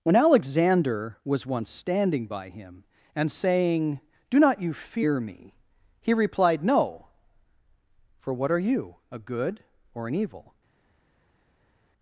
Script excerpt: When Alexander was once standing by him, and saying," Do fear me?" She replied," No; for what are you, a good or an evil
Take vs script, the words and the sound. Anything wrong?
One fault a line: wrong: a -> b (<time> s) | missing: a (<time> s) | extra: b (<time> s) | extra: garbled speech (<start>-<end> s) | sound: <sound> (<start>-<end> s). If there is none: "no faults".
extra: not you (4.4 s)
wrong: She -> He (6.0 s)